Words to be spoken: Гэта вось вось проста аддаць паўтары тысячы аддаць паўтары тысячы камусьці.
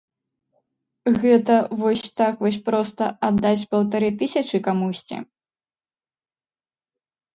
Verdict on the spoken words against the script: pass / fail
fail